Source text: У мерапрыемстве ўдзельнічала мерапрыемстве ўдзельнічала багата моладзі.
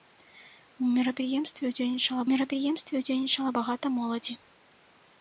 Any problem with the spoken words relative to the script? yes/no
no